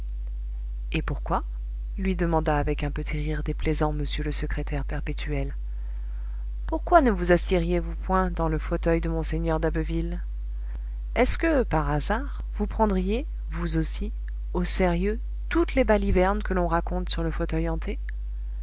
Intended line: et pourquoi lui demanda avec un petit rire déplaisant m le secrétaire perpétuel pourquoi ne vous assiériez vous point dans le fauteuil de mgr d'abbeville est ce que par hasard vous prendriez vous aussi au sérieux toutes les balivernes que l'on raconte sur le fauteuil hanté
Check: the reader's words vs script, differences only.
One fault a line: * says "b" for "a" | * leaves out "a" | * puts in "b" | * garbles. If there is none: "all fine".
all fine